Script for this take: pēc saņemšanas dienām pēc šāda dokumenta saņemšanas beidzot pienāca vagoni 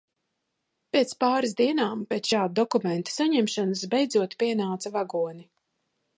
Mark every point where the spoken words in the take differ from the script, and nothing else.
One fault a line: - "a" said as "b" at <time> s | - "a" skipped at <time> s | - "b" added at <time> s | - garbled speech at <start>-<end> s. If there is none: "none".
- "saņemšanas" said as "pāris" at 1.2 s